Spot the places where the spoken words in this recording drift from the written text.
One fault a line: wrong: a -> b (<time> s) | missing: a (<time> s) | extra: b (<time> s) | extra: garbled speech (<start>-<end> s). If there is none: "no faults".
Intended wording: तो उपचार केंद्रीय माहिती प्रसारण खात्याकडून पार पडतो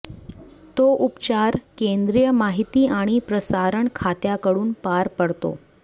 extra: आणि (2.9 s)